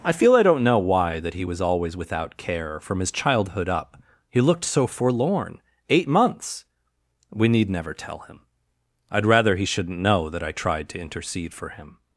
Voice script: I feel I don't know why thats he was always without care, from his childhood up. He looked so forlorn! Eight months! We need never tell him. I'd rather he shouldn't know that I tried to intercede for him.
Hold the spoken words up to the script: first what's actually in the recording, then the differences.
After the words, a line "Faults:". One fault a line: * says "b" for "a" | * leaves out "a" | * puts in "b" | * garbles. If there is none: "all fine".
I feel I don't know why that he was always without care, from his childhood up. He looked so forlorn! Eight months! We need never tell him. I'd rather he shouldn't know that I tried to intercede for him.
Faults:
* says "that" for "thats"